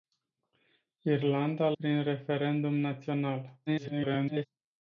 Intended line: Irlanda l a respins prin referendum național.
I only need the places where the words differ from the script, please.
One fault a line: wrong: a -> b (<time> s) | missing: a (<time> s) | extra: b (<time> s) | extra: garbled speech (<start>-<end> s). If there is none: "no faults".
missing: a respins (1.8 s)
extra: garbled speech (3.7-4.5 s)